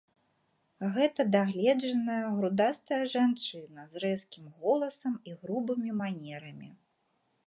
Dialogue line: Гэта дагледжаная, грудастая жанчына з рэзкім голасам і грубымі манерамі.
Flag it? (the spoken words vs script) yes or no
no